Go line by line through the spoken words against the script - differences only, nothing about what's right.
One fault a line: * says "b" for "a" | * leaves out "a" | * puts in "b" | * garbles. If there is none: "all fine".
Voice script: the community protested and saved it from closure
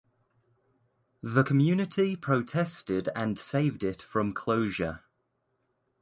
all fine